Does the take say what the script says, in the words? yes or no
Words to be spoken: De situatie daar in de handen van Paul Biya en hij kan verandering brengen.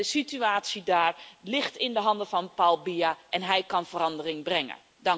no